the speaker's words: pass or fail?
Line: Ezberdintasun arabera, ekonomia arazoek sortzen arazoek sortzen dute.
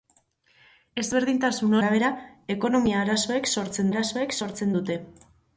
pass